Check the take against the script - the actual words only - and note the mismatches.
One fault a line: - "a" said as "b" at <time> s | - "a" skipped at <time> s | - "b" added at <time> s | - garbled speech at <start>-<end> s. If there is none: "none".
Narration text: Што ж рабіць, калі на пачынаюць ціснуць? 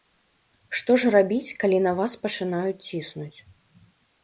- "вас" added at 2.0 s